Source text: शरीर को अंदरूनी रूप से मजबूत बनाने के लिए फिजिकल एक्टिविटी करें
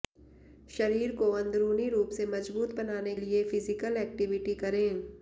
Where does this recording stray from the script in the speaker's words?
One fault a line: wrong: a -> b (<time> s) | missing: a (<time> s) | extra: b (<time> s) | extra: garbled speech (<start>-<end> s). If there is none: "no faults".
missing: के (3.1 s)